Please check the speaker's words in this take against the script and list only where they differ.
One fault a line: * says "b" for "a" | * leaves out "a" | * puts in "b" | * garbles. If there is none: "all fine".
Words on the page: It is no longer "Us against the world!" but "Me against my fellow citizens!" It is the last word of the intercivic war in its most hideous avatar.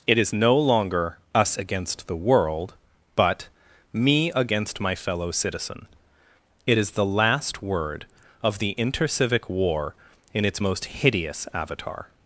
* says "citizen" for "citizens"